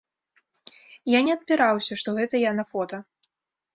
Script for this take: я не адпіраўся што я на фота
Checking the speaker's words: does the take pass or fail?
fail